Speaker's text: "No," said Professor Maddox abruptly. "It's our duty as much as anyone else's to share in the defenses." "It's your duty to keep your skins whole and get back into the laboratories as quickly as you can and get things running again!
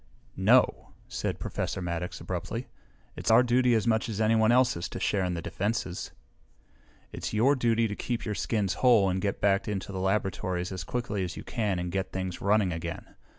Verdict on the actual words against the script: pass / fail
pass